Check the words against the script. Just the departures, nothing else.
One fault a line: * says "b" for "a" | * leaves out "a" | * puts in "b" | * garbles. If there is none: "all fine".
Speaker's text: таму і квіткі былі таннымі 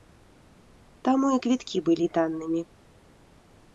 all fine